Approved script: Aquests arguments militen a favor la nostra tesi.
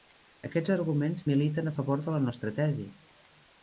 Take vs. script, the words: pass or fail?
fail